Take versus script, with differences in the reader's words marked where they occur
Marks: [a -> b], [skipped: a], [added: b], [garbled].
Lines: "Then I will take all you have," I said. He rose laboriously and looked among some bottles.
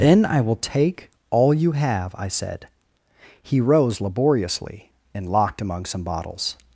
"Then I will take all you have," I said. He rose laboriously and [looked -> locked] among some bottles.